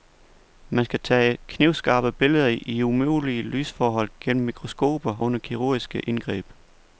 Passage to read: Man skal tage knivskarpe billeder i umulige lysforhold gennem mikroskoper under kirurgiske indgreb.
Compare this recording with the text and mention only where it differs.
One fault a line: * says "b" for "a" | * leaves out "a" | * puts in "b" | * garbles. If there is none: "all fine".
all fine